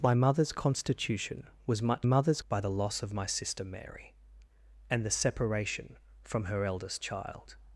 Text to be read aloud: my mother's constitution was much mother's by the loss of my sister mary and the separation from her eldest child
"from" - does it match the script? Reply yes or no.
yes